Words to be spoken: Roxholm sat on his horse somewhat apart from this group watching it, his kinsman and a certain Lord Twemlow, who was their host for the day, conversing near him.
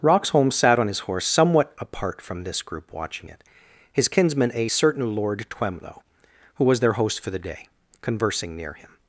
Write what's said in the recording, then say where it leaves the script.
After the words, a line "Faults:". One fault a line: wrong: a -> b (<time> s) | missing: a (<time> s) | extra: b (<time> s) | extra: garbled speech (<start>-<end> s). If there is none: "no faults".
Roxholm sat on his horse somewhat apart from this group watching it, his kinsman a certain Lord Twemlow, who was their host for the day, conversing near him.
Faults:
missing: and (4.5 s)